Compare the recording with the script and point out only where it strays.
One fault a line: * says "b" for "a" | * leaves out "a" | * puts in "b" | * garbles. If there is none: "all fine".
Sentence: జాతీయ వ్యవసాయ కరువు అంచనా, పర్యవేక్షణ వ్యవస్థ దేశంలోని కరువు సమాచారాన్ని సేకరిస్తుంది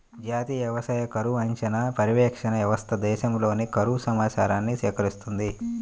all fine